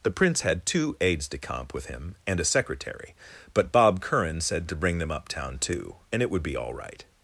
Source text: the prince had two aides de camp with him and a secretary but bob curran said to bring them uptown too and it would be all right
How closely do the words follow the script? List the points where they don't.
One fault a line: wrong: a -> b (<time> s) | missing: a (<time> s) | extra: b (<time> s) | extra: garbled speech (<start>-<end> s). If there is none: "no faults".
no faults